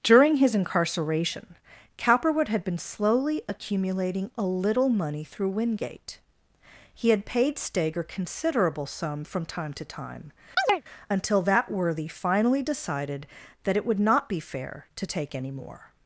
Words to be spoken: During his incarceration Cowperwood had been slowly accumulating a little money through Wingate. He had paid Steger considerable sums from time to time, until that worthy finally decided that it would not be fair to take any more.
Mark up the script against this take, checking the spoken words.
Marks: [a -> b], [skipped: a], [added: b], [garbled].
During his incarceration Cowperwood had been slowly accumulating a little money through Wingate. He had paid Steger considerable [sums -> sum] from time to time, until that worthy finally decided that it would not be fair to take any more.